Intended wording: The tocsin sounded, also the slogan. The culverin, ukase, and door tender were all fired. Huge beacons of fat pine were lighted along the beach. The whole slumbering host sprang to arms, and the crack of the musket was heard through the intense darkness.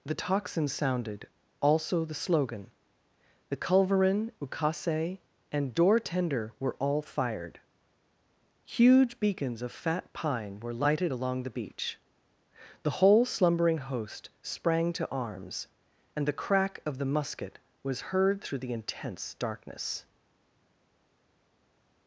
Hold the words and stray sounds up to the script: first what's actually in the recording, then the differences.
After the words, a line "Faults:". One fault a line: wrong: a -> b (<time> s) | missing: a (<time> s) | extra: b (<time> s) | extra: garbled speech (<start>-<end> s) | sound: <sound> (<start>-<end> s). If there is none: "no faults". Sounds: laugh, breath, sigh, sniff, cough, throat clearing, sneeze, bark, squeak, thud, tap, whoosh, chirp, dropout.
The tocsin sounded, also the slogan. The culverin, ukase, and door tender were all fired. Huge beacons of fat pine were lighted along the beach. The whole slumbering host sprang to arms, and the crack of the musket was heard through the intense darkness.
Faults:
no faults